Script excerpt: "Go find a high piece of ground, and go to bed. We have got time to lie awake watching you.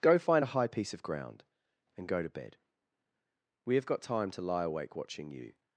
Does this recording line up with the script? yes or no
yes